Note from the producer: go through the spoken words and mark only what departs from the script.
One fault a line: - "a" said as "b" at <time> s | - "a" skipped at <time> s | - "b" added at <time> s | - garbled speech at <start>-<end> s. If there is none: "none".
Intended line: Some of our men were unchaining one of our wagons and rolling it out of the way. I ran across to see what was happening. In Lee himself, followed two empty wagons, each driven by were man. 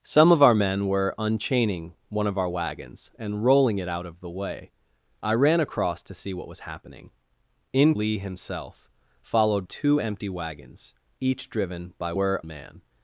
none